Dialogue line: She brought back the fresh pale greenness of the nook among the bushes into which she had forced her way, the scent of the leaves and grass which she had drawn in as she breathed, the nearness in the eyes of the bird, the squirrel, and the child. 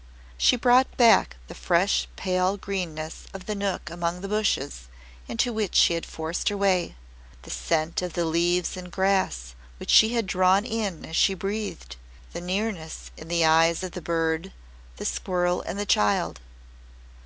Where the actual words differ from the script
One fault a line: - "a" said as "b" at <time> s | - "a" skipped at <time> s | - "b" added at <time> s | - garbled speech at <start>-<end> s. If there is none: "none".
none